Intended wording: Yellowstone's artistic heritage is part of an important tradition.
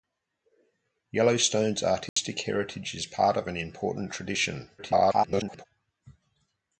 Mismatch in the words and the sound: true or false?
true